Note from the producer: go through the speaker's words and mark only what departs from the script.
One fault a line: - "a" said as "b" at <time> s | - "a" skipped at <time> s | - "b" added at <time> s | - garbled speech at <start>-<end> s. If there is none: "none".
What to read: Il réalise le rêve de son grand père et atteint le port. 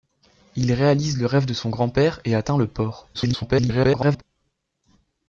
- garbled speech at 3.1-4.2 s